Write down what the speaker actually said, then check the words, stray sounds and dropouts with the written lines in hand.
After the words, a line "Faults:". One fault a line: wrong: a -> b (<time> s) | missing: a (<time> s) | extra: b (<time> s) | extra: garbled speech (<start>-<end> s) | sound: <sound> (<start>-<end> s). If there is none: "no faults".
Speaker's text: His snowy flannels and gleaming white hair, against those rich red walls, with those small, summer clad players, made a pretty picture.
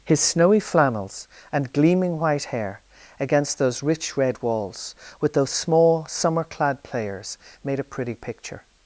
His snowy flannels and gleaming white hair, against those rich red walls, with those small, summer clad players, made a pretty picture.
Faults:
no faults